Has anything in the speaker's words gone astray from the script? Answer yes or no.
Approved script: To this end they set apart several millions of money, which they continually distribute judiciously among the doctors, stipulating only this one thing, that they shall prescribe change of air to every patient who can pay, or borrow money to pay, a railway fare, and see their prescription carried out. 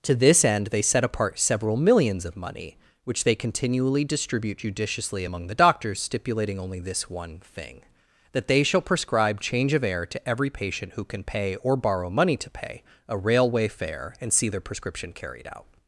no